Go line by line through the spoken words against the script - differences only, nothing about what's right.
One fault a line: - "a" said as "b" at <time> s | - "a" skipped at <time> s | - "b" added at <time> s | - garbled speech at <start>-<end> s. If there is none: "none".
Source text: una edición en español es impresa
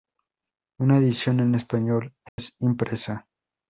none